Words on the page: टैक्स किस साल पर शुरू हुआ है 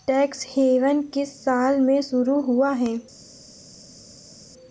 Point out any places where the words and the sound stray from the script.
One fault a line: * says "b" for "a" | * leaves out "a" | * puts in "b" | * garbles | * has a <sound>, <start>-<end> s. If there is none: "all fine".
* puts in "हेवन"
* says "में" for "पर"